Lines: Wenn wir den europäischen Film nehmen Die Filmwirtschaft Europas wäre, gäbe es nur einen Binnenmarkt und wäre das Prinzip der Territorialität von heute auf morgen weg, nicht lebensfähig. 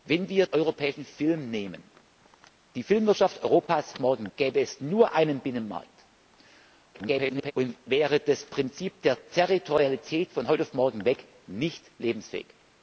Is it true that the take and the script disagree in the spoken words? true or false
true